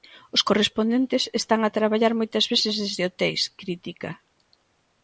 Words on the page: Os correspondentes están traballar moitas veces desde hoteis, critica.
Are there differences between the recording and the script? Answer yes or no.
yes